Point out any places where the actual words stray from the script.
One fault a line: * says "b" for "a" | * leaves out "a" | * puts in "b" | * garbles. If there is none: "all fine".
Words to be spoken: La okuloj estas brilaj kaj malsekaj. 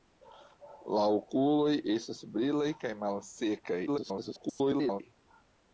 * garbles